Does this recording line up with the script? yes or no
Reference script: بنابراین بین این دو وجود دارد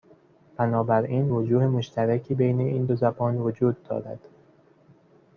no